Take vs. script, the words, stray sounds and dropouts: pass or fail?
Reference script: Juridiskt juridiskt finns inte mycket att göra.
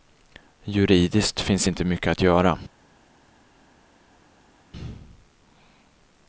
fail